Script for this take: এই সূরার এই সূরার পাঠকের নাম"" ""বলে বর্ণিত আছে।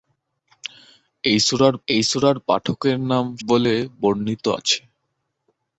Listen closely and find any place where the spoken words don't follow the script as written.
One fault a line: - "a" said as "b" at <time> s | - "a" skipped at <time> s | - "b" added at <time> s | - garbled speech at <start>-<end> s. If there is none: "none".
none